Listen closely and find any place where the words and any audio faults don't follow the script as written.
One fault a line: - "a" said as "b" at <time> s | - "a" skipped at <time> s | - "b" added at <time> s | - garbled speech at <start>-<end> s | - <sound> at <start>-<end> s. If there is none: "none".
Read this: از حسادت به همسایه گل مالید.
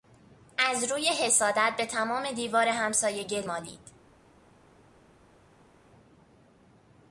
- "روی" added at 0.9 s
- "تمام دیوار" added at 1.9 s